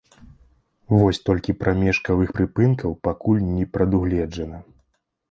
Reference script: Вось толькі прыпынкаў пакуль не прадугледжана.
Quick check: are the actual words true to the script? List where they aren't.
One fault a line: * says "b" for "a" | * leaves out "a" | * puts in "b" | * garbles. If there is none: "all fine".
* puts in "прамежкавых"